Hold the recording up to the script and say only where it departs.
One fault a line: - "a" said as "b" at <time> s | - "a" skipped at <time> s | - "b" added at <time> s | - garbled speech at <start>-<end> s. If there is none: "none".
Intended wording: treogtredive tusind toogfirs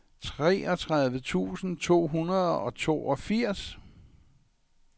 - "to hundrede og" added at 1.8 s